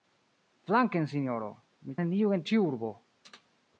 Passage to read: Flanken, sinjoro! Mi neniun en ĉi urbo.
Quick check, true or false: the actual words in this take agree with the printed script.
true